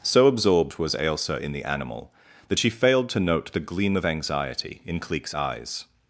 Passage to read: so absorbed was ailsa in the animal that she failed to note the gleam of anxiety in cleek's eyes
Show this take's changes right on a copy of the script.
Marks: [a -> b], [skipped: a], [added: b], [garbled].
so absorbed was ailsa in the animal that she failed to note the gleam of anxiety in cleek's eyes